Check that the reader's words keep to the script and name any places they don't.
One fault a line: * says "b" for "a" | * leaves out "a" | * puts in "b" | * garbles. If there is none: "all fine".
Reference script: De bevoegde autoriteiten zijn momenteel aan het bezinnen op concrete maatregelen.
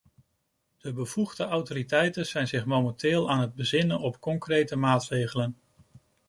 * puts in "zich"